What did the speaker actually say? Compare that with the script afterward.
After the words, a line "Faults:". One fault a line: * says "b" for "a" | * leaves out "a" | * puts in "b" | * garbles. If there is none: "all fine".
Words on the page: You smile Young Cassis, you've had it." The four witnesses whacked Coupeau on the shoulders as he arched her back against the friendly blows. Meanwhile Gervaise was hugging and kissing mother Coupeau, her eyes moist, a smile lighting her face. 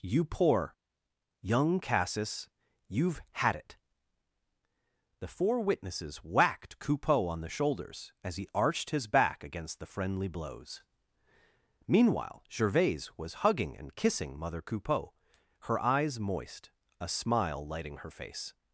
You poor Young Cassis, you've had it." The four witnesses whacked Coupeau on the shoulders as he arched his back against the friendly blows. Meanwhile Gervaise was hugging and kissing mother Coupeau, her eyes moist, a smile lighting her face.
Faults:
* says "poor" for "smile"
* says "his" for "her"